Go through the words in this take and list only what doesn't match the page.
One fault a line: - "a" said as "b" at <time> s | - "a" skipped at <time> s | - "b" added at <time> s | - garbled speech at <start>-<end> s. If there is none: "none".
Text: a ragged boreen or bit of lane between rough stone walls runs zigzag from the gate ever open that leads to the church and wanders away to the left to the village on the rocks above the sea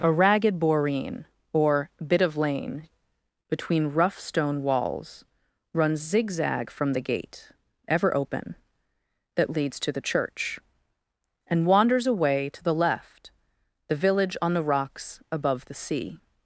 - "to" skipped at 13.3 s